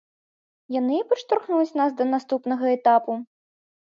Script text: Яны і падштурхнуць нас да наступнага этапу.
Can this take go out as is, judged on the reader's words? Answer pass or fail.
pass